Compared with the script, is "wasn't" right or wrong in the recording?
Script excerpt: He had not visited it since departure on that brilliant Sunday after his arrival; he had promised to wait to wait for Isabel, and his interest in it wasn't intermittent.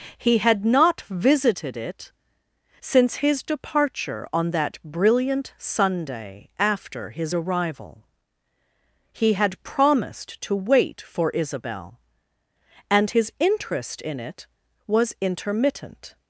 wrong